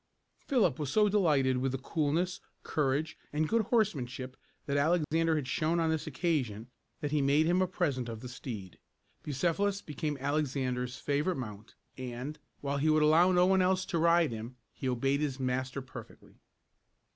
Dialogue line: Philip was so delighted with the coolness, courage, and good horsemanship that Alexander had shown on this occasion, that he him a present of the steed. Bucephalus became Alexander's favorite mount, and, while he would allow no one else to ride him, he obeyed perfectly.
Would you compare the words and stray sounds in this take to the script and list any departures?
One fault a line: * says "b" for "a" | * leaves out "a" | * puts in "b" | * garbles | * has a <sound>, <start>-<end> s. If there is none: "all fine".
* has a dropout, 5.0-5.1 s
* puts in "made"
* puts in "his master"